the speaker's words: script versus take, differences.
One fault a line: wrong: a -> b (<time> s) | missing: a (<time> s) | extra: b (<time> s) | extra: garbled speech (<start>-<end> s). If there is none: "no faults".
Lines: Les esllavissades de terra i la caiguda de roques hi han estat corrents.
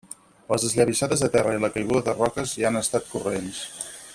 no faults